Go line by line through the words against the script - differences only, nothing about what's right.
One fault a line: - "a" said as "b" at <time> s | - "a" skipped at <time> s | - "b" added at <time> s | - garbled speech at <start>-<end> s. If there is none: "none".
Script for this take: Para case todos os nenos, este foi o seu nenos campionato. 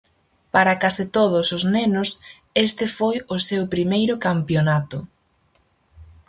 - "nenos" said as "primeiro" at 3.7 s